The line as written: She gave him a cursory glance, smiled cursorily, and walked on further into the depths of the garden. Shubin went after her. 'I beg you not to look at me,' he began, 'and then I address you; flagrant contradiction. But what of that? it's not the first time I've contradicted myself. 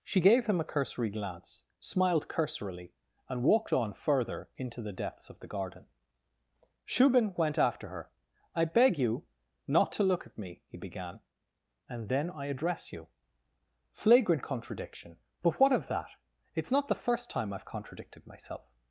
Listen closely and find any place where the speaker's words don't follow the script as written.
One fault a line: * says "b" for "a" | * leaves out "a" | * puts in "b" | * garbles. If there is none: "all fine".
all fine